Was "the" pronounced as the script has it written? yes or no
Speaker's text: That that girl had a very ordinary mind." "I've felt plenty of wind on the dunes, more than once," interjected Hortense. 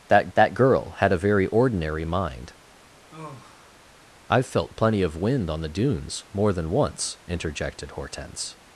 yes